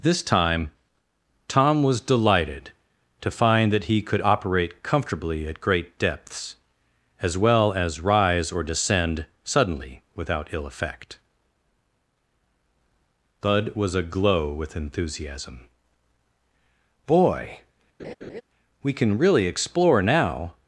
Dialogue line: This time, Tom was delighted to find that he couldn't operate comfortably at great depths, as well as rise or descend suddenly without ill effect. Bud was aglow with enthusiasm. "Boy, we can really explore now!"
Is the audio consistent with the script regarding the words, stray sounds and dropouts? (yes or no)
no